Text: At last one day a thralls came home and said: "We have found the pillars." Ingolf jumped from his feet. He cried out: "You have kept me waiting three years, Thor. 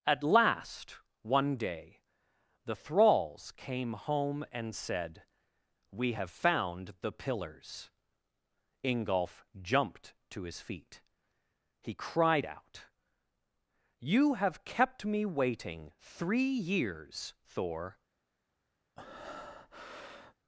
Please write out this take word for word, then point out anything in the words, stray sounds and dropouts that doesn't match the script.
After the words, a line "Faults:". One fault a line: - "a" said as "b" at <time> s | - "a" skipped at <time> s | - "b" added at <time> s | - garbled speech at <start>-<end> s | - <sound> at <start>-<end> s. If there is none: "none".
At last one day the thralls came home and said: "We have found the pillars." Ingolf jumped to his feet. He cried out: "You have kept me waiting three years, Thor.
Faults:
- "a" said as "the" at 2.6 s
- "from" said as "to" at 10.3 s
- breath at 19.0-20.3 s